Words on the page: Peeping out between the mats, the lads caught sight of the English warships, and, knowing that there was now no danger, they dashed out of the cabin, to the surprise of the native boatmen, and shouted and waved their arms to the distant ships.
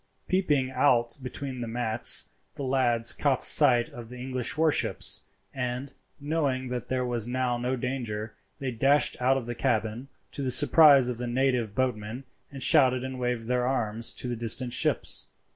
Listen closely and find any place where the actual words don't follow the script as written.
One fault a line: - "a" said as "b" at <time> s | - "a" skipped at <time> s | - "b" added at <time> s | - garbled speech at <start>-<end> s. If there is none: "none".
none